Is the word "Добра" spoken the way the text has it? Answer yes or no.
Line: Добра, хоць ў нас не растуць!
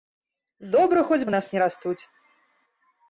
yes